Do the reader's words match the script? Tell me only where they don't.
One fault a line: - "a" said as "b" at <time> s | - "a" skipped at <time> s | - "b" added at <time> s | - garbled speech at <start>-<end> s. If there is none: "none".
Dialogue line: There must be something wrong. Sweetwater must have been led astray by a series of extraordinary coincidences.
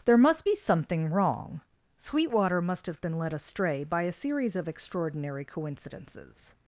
none